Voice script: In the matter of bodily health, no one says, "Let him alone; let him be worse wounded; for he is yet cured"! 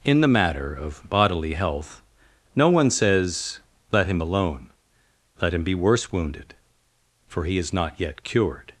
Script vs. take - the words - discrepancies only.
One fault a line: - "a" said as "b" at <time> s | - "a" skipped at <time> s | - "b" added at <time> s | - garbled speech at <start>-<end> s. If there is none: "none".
- "not" added at 7.7 s